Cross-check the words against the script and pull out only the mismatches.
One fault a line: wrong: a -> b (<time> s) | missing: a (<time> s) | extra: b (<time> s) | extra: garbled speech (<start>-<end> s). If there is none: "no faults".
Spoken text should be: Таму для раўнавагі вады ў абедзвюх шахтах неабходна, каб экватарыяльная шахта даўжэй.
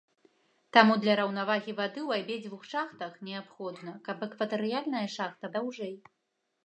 no faults